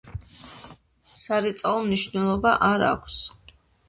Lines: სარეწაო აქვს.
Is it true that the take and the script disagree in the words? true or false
true